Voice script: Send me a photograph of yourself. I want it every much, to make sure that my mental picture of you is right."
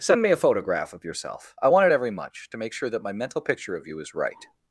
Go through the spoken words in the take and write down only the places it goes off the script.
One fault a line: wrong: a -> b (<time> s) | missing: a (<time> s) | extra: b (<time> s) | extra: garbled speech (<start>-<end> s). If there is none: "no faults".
no faults